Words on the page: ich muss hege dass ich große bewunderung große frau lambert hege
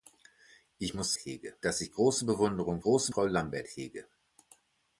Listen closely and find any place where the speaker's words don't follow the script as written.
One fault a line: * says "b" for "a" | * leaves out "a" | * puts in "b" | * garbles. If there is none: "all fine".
all fine